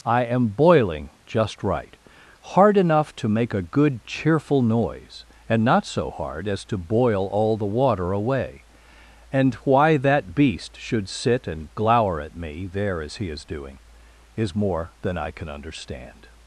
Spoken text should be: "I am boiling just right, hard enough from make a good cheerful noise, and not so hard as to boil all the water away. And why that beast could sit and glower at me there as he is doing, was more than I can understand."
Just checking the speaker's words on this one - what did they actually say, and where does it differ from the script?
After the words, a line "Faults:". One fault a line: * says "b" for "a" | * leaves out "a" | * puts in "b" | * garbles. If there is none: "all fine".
"I am boiling just right, hard enough to make a good cheerful noise, and not so hard as to boil all the water away. And why that beast should sit and glower at me there as he is doing, is more than I can understand."
Faults:
* says "to" for "from"
* says "should" for "could"
* says "is" for "was"